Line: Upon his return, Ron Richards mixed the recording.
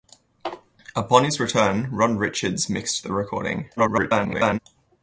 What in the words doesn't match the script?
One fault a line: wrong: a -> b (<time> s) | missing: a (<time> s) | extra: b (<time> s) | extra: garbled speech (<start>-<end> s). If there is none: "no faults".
extra: garbled speech (3.8-4.6 s)